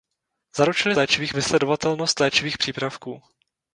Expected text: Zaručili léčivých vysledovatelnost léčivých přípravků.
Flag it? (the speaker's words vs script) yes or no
no